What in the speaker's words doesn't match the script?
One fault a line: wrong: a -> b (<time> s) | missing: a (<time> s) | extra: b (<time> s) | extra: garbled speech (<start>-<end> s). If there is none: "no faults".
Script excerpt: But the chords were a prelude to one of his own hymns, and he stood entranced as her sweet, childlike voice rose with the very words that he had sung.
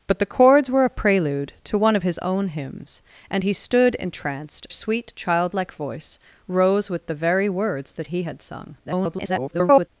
missing: as her (4.7 s)
extra: garbled speech (8.8-9.9 s)